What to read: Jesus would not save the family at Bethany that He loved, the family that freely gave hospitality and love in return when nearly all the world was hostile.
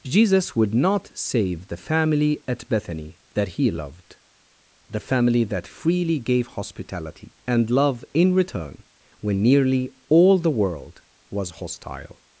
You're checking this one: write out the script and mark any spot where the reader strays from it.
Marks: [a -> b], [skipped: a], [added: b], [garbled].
Jesus would not save the family at Bethany that He loved, the family that freely gave hospitality and love in return when nearly all the world was hostile.